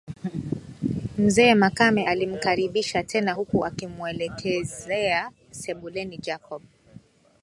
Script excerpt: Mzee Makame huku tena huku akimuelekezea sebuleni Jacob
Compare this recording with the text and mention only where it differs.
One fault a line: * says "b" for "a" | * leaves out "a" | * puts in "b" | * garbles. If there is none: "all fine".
* says "alimkaribisha" for "huku"